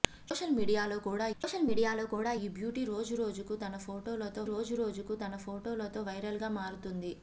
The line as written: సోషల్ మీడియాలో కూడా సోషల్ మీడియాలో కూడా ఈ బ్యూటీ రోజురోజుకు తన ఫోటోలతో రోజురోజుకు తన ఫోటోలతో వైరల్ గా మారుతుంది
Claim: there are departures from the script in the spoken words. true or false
false